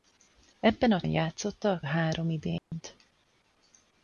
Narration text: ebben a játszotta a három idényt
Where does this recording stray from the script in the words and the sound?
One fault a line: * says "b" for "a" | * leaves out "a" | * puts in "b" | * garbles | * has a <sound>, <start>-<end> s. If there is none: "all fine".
* has a dropout, 2.6-2.7 s